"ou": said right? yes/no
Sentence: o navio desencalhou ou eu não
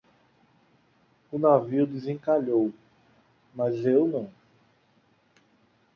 no